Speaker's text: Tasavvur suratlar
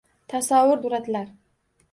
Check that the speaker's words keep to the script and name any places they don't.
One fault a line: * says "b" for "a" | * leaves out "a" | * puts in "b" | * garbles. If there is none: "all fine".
all fine